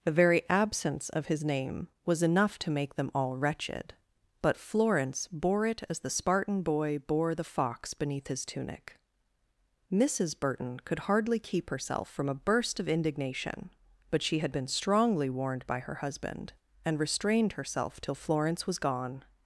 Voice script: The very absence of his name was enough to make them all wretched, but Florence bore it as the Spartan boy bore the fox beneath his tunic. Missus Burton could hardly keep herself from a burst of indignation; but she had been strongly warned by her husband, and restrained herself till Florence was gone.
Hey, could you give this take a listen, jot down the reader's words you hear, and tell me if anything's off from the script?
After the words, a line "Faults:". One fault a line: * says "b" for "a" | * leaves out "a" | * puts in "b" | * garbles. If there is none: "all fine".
The very absence of his name was enough to make them all wretched, but Florence bore it as the Spartan boy bore the fox beneath his tunic. Missus Burton could hardly keep herself from a burst of indignation; but she had been strongly warned by her husband, and restrained herself till Florence was gone.
Faults:
all fine